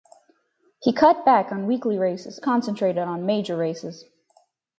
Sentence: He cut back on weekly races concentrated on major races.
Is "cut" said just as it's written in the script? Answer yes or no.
yes